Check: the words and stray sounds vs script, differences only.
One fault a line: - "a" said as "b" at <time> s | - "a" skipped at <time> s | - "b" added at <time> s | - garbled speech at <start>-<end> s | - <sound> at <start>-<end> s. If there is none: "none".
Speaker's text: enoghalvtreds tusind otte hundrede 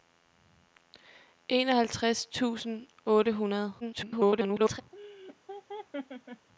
- garbled speech at 3.8-4.8 s
- laugh at 4.9-6.5 s